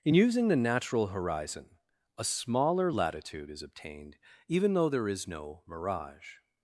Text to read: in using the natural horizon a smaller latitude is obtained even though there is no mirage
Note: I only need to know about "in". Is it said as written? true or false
true